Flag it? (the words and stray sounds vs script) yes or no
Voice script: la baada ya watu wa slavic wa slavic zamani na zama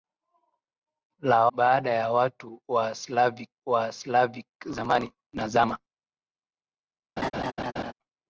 yes